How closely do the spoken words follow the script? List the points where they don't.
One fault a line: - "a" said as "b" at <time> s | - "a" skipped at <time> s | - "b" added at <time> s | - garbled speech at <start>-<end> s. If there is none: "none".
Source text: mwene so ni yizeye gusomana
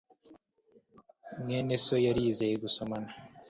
- "ni" said as "yari" at 2.0 s